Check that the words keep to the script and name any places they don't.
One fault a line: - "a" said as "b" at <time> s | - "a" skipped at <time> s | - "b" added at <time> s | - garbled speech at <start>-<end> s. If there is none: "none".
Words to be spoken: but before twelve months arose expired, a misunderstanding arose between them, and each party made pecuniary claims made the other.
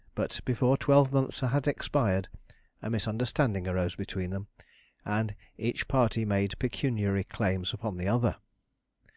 - "arose" said as "had" at 1.4 s
- "made" said as "upon" at 7.7 s